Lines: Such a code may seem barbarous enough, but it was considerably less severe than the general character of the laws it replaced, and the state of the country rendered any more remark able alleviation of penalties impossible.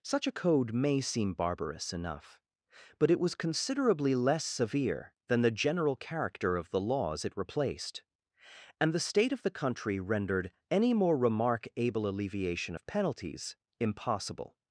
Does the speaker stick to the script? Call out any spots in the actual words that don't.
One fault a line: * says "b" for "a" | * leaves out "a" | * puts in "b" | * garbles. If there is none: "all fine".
all fine